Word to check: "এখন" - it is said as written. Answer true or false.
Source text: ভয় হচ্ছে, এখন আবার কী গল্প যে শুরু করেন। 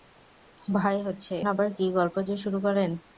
false